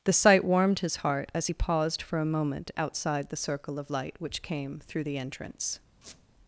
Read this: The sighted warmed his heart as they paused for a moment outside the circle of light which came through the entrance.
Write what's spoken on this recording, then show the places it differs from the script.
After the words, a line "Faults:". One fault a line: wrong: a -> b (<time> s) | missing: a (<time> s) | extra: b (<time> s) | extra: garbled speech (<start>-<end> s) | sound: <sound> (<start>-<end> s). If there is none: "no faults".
The sight warmed his heart as he paused for a moment outside the circle of light which came through the entrance.
Faults:
wrong: sighted -> sight (0.1 s)
wrong: they -> he (1.4 s)
sound: squeak (6.0-6.3 s)